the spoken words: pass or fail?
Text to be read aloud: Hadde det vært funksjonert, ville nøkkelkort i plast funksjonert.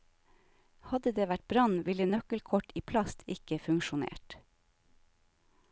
fail